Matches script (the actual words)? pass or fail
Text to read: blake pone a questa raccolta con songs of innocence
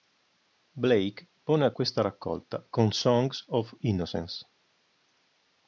pass